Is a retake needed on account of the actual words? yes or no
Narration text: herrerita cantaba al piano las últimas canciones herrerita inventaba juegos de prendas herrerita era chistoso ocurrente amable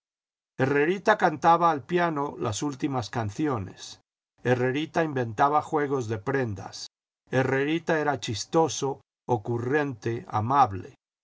no